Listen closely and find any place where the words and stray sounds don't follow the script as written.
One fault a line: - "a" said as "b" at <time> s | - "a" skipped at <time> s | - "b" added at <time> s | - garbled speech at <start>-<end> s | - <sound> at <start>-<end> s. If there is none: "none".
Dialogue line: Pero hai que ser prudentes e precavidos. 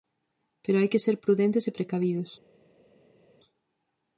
none